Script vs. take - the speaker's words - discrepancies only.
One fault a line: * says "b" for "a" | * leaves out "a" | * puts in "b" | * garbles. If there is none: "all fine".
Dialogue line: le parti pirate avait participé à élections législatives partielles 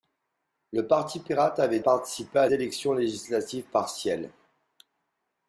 all fine